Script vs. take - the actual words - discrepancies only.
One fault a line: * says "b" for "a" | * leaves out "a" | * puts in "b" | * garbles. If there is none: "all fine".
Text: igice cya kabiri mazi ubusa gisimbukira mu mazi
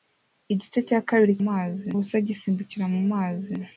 all fine